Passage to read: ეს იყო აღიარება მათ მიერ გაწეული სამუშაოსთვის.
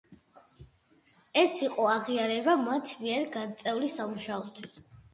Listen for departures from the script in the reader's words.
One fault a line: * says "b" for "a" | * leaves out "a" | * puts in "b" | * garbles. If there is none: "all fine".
all fine